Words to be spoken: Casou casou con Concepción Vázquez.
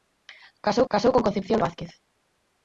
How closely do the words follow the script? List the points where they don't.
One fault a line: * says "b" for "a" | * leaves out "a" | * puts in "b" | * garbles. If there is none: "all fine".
all fine